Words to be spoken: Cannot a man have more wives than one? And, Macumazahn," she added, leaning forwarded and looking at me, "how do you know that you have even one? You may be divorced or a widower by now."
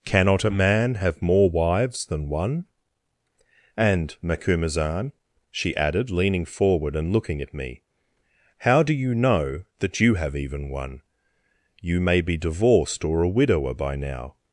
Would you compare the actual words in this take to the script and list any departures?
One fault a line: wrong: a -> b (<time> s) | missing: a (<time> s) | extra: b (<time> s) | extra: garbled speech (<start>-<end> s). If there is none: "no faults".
wrong: forwarded -> forward (6.4 s)